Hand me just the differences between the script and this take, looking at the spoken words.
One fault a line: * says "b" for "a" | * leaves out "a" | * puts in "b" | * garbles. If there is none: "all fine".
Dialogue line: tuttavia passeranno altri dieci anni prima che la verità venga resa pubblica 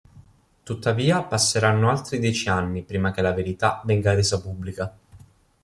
all fine